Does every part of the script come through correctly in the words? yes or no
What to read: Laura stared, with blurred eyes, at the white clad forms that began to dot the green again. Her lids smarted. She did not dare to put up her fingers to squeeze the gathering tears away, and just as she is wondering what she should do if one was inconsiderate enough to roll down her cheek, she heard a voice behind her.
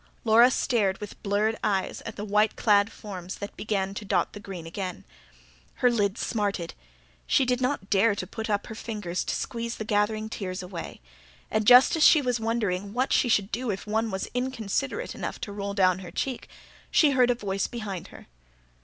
no